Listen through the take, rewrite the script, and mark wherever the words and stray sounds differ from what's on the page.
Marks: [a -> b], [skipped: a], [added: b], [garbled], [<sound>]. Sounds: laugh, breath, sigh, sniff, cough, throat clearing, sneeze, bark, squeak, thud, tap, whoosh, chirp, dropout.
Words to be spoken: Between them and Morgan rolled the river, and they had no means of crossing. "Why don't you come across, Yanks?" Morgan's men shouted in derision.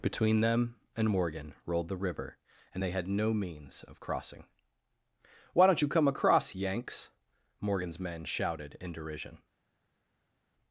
Between them and Morgan rolled the river, and they had no means of crossing. "Why don't you come across, Yanks?" Morgan's men shouted in derision.